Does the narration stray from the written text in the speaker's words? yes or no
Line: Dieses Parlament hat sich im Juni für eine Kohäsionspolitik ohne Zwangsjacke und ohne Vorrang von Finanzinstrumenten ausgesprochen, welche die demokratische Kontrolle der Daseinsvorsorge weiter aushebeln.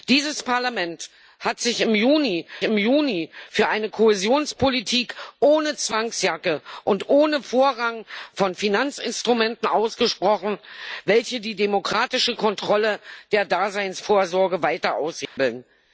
yes